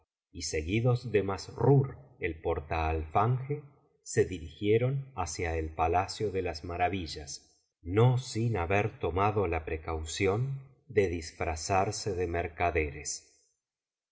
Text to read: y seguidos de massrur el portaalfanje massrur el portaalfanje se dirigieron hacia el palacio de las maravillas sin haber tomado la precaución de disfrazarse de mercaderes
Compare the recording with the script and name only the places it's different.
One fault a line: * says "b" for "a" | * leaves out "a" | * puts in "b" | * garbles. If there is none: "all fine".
* leaves out "massrur el portaalfanje"
* puts in "no"